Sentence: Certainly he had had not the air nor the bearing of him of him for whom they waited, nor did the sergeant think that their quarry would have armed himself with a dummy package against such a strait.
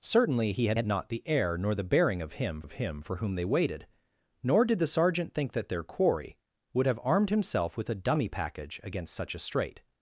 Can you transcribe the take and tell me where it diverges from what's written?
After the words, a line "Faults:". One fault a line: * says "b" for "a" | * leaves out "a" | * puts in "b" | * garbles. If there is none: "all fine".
Certainly he had had not the air nor the bearing of him of him for whom they waited, nor did the sergeant think that their quarry would have armed himself with a dummy package against such a strait.
Faults:
all fine